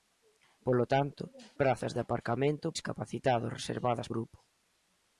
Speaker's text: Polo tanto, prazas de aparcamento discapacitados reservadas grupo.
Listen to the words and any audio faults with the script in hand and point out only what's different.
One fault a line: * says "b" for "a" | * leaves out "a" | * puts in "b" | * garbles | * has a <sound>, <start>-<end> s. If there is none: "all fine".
all fine